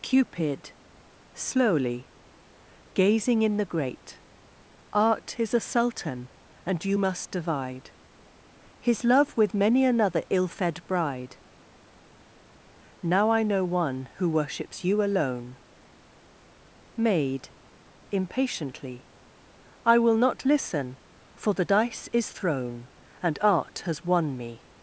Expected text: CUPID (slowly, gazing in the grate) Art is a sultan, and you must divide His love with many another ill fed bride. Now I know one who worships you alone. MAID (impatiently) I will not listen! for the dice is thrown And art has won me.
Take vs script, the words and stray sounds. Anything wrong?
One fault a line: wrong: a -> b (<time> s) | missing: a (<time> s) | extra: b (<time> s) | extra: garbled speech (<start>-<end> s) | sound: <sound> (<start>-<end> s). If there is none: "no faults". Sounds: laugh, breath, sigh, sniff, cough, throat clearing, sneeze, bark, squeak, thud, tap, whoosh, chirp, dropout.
no faults